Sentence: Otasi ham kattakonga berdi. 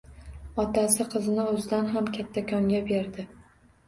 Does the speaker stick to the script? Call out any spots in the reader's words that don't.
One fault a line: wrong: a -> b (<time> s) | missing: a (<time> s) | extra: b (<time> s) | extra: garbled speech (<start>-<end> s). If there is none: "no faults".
extra: qizini o‘zidan (1.1 s)